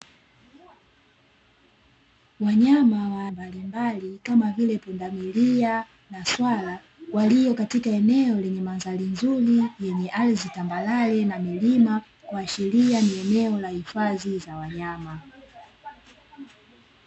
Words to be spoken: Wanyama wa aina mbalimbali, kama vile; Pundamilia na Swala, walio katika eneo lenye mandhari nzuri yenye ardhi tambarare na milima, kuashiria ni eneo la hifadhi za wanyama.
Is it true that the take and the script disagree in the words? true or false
true